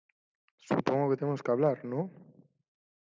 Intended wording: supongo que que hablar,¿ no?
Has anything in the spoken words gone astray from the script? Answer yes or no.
yes